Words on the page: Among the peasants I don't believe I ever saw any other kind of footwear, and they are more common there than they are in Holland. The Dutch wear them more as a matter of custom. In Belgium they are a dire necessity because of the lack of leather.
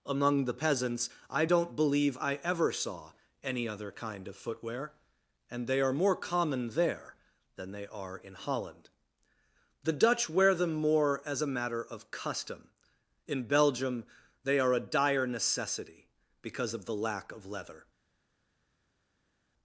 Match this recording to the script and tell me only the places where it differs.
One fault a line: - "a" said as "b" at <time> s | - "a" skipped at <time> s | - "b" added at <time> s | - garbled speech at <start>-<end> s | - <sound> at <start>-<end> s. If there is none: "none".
none